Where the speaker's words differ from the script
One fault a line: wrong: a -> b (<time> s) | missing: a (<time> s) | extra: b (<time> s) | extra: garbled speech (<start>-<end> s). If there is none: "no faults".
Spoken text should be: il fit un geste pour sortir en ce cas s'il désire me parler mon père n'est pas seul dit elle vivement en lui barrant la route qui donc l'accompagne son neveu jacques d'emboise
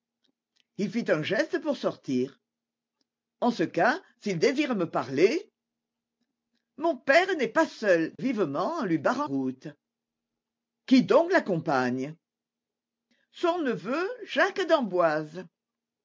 missing: dit elle (8.1 s)
missing: la (9.3 s)